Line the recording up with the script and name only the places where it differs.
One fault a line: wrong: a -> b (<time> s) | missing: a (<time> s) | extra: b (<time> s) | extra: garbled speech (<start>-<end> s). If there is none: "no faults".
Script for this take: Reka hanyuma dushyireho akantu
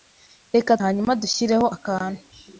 no faults